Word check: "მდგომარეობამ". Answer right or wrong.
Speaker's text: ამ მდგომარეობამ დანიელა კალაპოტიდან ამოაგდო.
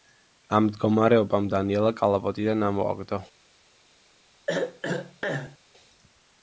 right